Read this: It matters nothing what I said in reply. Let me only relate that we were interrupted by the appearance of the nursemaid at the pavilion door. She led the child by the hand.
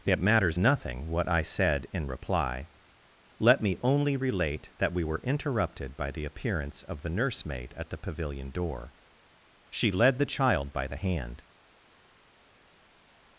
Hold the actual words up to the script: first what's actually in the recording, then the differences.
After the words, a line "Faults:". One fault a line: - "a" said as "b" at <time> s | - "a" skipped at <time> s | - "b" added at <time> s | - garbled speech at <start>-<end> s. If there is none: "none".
It matters nothing what I said in reply. Let me only relate that we were interrupted by the appearance of the nursemaid at the pavilion door. She led the child by the hand.
Faults:
none